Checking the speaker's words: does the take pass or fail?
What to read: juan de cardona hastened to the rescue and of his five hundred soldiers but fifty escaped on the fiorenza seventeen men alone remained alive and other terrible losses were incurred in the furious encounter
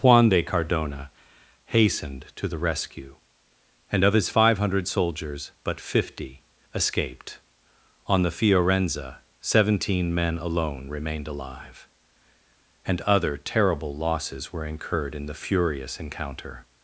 pass